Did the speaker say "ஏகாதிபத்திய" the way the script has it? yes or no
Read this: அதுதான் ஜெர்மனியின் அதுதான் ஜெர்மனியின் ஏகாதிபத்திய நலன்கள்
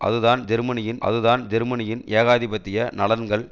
yes